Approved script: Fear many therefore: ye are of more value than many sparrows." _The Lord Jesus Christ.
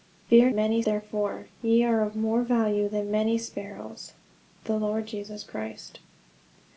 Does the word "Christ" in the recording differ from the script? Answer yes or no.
no